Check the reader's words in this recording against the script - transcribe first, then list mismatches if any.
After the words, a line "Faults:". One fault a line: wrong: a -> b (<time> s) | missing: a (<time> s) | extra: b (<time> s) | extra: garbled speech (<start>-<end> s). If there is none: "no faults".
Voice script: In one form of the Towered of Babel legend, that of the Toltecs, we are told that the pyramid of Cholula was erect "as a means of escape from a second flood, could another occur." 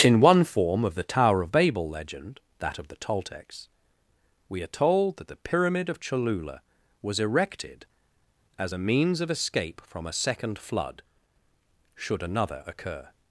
In one form of the Tower of Babel legend, that of the Toltecs, we are told that the pyramid of Cholula was erected "as a means of escape from a second flood, should another occur."
Faults:
wrong: Towered -> Tower (1.0 s)
wrong: erect -> erected (7.2 s)
wrong: could -> should (11.9 s)